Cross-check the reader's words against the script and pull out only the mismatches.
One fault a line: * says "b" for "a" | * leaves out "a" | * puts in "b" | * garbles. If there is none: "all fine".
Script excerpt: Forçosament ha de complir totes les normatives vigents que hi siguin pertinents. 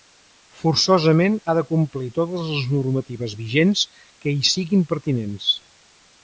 all fine